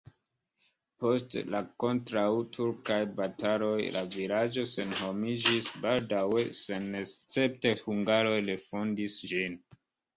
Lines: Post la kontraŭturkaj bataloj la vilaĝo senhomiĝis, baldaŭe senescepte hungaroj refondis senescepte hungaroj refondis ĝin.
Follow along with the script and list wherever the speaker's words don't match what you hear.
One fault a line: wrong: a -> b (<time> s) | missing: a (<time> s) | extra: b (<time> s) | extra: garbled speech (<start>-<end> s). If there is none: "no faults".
missing: senescepte hungaroj refondis (9.2 s)